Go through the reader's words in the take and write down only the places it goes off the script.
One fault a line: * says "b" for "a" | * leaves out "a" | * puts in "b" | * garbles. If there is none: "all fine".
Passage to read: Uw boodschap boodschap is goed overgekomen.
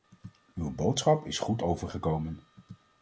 * leaves out "boodschap"